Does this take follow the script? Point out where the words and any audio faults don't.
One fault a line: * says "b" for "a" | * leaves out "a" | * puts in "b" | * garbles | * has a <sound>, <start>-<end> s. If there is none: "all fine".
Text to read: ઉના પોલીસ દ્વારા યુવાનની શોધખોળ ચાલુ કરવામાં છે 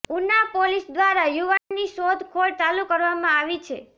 * has a dropout, 1.6-1.7 s
* puts in "આવી"